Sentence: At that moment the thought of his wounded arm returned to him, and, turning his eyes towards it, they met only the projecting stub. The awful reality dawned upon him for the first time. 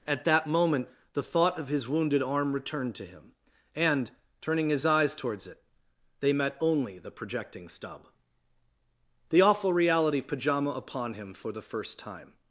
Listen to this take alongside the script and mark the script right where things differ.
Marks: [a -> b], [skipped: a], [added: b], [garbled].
At that moment the thought of his wounded arm returned to him, and, turning his eyes towards it, they met only the projecting stub. The awful reality [dawned -> pajama] upon him for the first time.